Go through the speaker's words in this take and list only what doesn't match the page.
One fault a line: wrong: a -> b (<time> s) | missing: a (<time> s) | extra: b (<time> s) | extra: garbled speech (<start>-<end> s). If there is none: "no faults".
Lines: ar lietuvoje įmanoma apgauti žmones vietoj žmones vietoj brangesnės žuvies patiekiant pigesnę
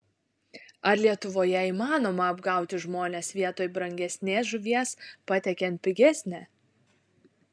missing: žmones vietoj (3.7 s)